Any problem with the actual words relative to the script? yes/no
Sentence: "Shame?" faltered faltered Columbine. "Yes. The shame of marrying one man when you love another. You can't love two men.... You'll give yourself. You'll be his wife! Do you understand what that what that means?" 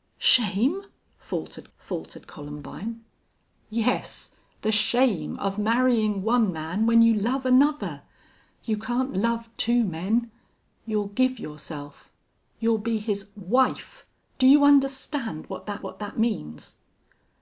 no